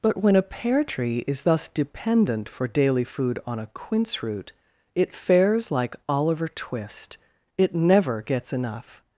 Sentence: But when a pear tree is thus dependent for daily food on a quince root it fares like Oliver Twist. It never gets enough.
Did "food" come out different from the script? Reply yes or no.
no